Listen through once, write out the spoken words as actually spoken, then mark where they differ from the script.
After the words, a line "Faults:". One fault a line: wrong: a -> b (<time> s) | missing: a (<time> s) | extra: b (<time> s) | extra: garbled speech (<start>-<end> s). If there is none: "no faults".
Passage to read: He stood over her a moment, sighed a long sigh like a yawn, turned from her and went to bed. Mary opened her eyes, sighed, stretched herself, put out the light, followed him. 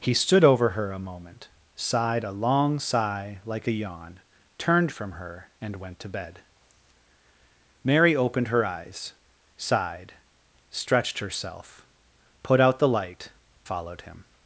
He stood over her a moment, sighed a long sigh like a yawn, turned from her and went to bed. Mary opened her eyes, sighed, stretched herself, put out the light, followed him.
Faults:
no faults